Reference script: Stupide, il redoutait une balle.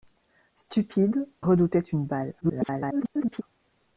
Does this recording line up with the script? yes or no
no